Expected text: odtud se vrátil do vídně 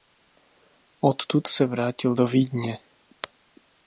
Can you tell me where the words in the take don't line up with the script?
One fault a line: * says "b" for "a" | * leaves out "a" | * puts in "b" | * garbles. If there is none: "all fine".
all fine